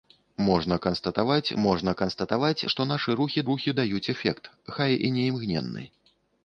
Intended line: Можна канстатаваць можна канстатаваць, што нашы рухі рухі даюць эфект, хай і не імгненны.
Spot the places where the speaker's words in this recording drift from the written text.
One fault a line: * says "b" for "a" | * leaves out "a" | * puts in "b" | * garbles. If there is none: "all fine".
all fine